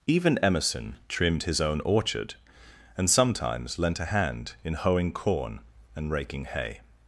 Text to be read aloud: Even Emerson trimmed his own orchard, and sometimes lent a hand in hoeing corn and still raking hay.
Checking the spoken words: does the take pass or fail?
fail